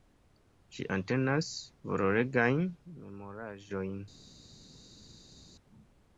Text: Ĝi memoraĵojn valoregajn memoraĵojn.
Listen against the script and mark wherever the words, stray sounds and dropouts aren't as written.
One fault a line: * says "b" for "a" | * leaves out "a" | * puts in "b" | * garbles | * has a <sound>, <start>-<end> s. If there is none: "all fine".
* says "entenas" for "memoraĵojn"